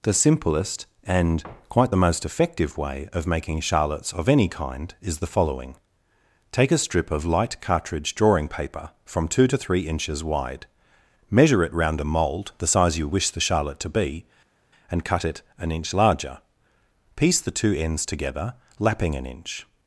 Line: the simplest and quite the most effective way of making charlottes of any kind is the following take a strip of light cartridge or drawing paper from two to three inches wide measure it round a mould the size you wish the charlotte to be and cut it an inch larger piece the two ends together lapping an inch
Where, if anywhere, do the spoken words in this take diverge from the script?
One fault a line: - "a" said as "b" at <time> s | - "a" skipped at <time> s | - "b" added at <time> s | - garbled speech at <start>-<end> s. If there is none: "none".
- "or" skipped at 8.1 s